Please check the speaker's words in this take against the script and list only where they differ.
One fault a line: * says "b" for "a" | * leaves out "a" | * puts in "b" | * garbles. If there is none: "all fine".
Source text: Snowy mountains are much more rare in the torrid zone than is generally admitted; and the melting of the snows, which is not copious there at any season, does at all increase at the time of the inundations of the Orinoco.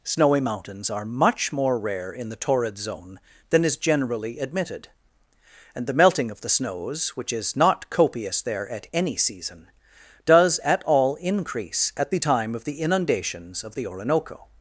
all fine